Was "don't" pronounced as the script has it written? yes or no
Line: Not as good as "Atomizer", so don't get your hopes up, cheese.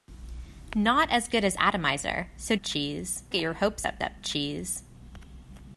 no